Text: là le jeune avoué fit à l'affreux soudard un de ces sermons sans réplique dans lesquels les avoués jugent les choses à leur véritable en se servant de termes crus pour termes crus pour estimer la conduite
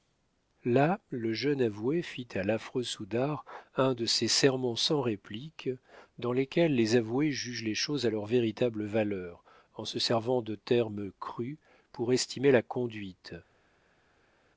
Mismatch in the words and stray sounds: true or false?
true